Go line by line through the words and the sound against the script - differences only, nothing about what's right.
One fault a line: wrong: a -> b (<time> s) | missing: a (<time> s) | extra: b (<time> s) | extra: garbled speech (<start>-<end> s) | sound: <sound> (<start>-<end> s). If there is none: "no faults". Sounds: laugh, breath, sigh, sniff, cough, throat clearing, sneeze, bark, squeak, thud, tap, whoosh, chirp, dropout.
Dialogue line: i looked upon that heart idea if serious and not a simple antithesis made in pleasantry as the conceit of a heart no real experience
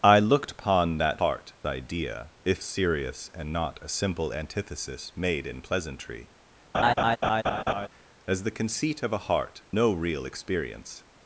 sound: laugh (6.7-7.9 s)